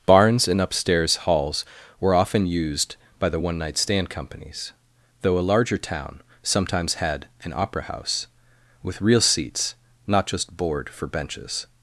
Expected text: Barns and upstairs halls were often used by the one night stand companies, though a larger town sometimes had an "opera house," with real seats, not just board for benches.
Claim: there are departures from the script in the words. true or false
false